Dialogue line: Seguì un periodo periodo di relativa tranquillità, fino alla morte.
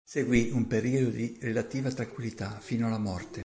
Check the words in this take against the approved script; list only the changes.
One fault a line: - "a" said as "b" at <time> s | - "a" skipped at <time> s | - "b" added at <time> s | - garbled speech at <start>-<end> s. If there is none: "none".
- "periodo" skipped at 1.1 s